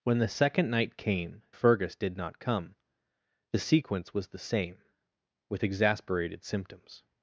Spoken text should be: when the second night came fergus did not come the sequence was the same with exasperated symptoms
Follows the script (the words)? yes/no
yes